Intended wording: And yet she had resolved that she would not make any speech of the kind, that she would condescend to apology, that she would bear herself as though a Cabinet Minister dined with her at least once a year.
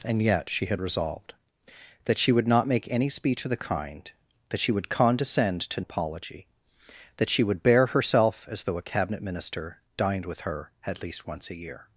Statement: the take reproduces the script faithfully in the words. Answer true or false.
true